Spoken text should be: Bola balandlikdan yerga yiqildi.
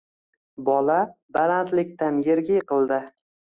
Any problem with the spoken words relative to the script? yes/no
no